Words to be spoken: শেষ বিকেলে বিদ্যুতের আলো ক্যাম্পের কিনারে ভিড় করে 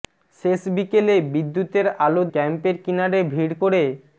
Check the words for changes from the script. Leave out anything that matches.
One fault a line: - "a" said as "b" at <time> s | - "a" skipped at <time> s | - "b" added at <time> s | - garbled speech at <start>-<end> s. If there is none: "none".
none